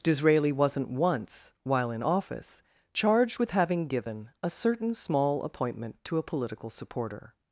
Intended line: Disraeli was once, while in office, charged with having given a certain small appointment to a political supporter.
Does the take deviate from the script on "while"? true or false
false